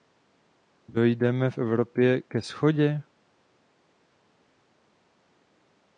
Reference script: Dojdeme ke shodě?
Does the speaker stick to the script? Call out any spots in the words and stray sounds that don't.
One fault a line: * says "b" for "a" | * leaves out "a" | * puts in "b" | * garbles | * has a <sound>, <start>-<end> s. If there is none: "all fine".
* puts in "v Evropě"